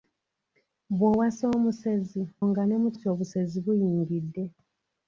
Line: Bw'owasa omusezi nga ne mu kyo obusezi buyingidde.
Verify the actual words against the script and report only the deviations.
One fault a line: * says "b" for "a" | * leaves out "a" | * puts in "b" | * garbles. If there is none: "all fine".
all fine